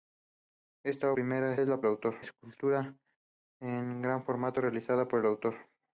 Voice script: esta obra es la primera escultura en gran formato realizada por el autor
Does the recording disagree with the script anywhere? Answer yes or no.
yes